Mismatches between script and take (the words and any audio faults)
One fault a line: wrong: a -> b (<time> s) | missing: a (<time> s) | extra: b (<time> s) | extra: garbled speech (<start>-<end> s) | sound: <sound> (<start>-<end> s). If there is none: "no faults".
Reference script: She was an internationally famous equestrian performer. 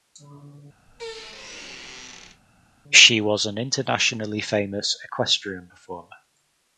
sound: squeak (0.9-2.4 s)